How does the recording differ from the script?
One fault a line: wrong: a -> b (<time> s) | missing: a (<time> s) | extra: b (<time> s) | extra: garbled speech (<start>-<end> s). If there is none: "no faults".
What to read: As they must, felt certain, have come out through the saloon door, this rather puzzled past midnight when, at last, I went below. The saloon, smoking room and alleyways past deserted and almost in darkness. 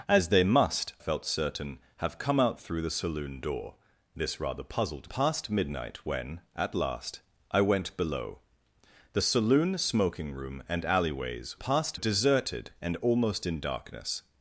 no faults